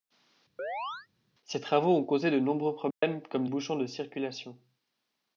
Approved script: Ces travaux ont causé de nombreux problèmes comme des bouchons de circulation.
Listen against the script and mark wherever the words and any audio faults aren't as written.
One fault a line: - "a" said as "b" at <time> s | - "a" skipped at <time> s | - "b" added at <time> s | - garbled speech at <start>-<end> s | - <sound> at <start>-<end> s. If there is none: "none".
- chirp at 0.6-1.1 s
- dropout at 2.9-3.0 s
- "des" skipped at 3.5 s